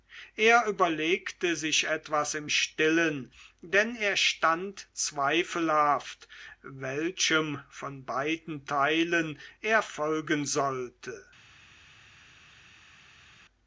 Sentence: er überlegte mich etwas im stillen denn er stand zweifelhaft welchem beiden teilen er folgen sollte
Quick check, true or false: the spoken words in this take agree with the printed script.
false